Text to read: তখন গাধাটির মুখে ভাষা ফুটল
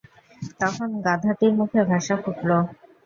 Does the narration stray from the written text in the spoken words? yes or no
no